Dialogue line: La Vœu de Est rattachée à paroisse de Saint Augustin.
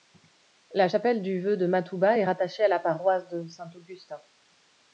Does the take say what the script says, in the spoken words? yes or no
no